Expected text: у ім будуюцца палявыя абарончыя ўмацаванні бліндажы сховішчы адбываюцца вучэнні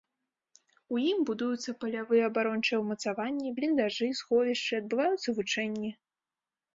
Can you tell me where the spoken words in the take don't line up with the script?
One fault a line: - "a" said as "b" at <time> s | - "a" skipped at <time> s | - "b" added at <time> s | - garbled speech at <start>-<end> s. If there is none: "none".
none